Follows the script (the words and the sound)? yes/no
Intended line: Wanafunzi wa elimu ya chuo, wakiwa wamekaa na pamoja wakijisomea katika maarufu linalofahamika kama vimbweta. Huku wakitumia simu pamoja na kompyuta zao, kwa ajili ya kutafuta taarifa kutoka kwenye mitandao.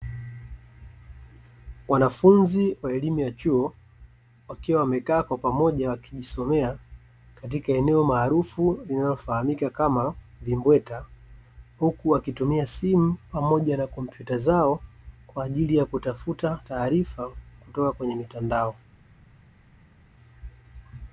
no